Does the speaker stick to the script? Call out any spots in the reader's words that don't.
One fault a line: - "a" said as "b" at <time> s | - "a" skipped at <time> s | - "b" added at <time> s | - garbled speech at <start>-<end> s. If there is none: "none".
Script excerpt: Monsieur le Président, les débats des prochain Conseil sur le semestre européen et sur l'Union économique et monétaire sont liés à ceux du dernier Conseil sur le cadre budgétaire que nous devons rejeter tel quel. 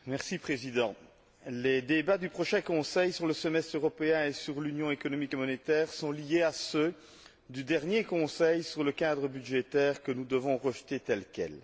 - "des" said as "du" at 2.2 s